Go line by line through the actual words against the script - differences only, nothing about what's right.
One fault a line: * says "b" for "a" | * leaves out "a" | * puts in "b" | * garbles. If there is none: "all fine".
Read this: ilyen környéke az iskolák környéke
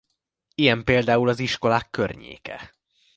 * says "például" for "környéke"